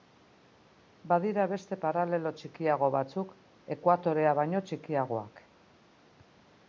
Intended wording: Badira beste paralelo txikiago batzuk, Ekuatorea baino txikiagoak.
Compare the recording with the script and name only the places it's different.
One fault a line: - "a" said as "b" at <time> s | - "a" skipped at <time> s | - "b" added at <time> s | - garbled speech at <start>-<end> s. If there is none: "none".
none